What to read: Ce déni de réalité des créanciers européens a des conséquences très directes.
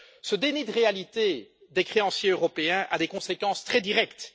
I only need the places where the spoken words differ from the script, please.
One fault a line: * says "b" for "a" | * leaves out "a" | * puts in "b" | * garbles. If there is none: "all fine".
all fine